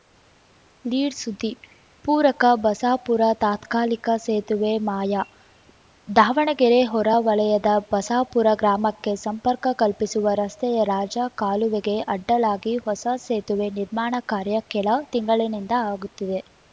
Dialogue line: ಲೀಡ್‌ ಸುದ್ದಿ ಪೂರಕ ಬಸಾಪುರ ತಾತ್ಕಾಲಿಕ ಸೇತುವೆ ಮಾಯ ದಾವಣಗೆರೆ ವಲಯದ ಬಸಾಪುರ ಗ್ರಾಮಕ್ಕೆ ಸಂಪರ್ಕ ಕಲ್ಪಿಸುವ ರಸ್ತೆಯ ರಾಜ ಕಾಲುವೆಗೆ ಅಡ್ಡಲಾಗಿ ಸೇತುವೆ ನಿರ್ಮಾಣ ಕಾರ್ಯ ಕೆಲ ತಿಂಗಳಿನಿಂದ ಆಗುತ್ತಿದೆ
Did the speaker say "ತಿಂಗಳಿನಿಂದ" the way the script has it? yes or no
yes